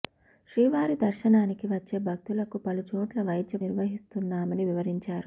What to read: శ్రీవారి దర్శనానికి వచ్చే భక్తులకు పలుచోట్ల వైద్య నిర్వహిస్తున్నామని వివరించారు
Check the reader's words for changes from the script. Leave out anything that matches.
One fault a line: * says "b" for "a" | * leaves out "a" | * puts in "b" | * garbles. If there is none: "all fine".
all fine